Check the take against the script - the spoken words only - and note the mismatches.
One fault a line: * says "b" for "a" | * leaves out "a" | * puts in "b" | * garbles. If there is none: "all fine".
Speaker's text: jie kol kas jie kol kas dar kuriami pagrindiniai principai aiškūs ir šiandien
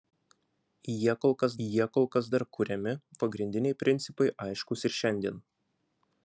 all fine